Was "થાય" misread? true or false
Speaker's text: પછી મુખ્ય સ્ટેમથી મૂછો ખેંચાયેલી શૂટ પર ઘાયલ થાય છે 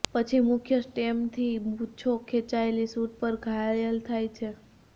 false